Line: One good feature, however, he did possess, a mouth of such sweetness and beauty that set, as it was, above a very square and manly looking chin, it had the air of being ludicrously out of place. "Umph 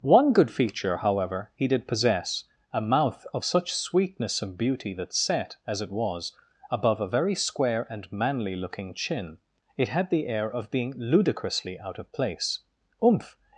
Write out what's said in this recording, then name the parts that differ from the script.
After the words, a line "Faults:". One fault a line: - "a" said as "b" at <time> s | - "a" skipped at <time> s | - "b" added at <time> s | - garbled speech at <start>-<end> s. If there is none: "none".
One good feature, however, he did possess, a mouth of such sweetness and beauty that set, as it was, above a very square and manly looking chin, it had the air of being ludicrously out of place. "Umph
Faults:
none